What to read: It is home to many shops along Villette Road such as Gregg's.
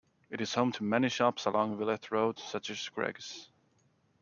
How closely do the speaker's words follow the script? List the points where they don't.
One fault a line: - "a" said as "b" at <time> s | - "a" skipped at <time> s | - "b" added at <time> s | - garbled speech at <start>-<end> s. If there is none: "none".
none